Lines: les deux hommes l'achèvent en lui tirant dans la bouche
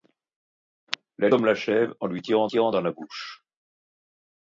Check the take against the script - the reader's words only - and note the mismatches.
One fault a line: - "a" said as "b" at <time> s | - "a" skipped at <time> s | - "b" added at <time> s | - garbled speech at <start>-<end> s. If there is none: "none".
- "deux" skipped at 1.3 s
- "tirant" added at 2.5 s